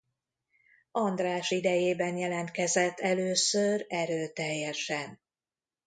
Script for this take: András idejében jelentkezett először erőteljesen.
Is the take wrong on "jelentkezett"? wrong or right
right